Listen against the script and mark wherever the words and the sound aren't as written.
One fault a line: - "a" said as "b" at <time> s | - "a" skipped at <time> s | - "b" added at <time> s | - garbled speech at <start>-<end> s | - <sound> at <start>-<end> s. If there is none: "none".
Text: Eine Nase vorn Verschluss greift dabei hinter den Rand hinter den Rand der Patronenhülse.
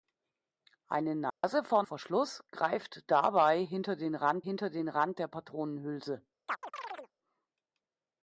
- dropout at 1.3-1.4 s
- chirp at 6.5-7.1 s